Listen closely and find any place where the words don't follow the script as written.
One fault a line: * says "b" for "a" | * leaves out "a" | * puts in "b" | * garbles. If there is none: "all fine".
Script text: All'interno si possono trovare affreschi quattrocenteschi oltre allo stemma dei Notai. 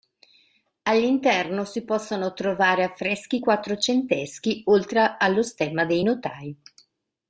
all fine